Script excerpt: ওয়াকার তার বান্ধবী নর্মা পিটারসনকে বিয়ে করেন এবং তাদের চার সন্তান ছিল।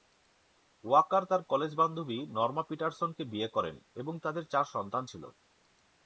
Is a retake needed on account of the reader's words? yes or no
yes